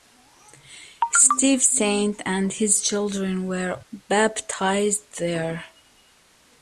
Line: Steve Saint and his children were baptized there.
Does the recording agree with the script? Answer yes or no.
yes